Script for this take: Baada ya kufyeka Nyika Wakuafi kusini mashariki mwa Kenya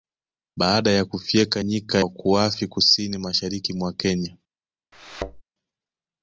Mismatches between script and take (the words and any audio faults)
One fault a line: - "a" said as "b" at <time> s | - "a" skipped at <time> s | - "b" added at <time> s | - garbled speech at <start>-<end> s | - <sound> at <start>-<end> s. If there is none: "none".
- thud at 4.9-5.4 s